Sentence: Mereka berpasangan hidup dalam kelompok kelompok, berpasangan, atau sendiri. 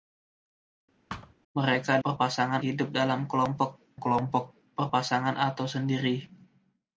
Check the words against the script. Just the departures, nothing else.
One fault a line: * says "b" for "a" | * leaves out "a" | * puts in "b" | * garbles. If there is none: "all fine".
all fine